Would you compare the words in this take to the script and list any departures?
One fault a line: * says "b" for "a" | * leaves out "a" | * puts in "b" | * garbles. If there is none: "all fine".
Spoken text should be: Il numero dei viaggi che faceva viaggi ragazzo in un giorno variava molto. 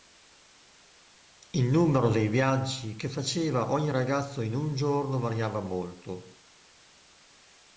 * says "ogni" for "viaggi"